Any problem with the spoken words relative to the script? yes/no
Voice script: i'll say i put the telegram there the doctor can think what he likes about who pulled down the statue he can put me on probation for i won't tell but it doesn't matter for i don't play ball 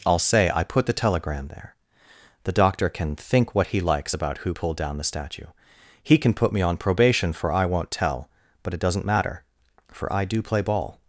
yes